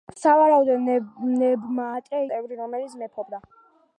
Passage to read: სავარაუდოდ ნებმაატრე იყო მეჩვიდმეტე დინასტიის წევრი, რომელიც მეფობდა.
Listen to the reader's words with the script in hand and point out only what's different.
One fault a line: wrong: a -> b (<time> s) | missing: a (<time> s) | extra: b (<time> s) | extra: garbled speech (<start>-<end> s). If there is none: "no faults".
missing: იყო მეჩვიდმეტე დინასტიის (2.2 s)